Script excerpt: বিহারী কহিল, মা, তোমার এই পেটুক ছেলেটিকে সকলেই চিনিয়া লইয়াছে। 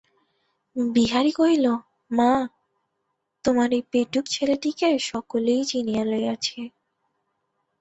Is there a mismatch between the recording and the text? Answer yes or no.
no